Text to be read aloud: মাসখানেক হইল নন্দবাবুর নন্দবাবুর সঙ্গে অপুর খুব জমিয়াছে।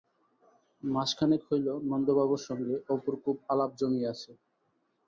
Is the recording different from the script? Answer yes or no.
yes